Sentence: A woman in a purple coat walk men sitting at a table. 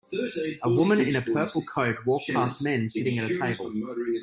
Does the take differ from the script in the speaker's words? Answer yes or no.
yes